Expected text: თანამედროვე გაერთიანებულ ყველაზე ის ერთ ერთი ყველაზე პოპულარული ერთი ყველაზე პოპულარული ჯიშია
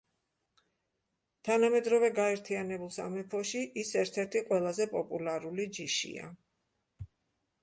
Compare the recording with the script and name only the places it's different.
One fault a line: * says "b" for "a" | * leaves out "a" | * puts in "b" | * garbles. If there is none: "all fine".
* says "სამეფოში" for "ყველაზე"
* leaves out "ერთი ყველაზე პოპულარული"